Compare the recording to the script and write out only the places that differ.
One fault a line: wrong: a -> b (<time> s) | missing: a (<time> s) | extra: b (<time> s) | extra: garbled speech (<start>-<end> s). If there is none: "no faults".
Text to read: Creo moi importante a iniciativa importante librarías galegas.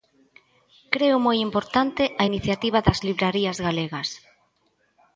wrong: importante -> das (2.9 s)